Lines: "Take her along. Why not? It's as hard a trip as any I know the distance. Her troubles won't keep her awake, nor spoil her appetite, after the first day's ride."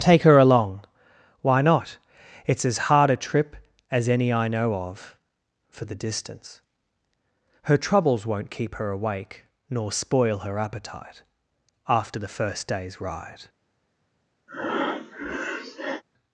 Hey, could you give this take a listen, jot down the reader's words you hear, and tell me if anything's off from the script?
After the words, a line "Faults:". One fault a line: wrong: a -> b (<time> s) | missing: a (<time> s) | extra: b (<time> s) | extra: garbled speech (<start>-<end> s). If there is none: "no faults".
"Take her along. Why not? It's as hard a trip as any I know of, for the distance. Her troubles won't keep her awake, nor spoil her appetite, after the first day's ride."
Faults:
extra: of for (4.7 s)